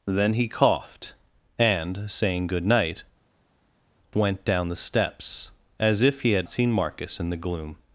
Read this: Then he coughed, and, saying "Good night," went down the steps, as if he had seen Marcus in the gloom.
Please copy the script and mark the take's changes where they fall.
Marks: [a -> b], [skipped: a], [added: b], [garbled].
Then he coughed, and, saying "Good night," went down the steps, as if he had seen Marcus in the gloom.